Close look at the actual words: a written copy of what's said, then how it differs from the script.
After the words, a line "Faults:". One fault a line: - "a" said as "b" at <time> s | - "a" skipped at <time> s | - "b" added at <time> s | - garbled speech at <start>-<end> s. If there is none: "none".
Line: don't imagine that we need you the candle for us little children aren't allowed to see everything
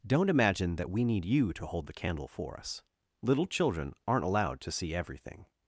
don't imagine that we need you to hold the candle for us little children aren't allowed to see everything
Faults:
- "to hold" added at 1.5 s